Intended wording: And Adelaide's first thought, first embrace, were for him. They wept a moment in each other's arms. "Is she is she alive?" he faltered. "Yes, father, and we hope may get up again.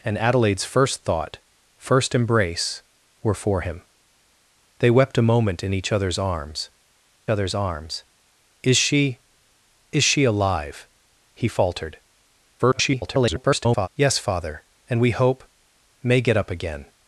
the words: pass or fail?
fail